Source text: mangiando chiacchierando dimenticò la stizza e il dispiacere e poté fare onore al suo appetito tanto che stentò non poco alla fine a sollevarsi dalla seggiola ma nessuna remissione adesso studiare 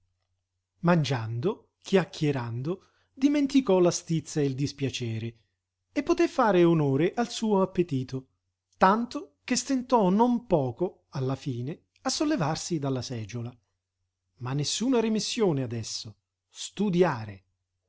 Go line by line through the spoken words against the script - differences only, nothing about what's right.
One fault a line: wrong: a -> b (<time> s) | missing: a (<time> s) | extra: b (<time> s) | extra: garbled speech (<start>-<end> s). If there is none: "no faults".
no faults